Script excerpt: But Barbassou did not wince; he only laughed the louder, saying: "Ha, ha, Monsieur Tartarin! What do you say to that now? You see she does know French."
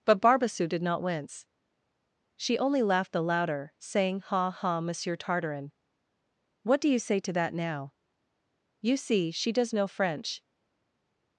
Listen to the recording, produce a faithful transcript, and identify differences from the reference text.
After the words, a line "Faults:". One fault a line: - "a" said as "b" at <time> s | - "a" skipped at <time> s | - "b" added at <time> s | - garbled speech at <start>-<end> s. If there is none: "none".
But Barbassou did not wince; she only laughed the louder, saying: "Ha, ha, Monsieur Tartarin! What do you say to that now? You see she does know French."
Faults:
- "he" said as "she" at 2.4 s